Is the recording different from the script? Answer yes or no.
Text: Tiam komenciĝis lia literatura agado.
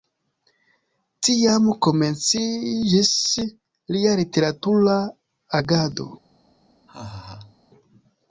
no